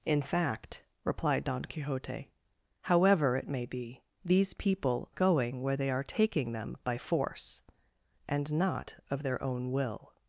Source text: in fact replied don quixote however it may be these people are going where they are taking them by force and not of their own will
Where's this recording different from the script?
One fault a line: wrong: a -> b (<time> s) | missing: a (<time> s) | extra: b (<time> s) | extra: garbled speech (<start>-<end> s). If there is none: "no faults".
missing: are (5.1 s)